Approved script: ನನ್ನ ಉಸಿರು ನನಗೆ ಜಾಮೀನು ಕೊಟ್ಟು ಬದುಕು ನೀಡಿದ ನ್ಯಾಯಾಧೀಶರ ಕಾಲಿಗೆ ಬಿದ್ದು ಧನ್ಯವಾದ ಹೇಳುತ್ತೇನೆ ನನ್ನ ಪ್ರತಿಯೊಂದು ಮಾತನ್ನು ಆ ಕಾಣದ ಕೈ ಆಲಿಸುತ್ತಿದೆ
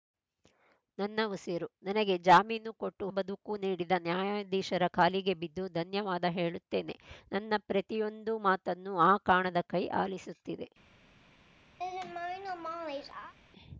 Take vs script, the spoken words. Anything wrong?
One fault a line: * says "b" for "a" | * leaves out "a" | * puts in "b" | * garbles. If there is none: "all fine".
all fine